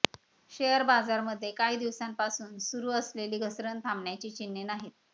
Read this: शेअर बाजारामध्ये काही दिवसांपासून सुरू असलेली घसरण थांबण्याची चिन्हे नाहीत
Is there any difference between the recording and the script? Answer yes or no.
no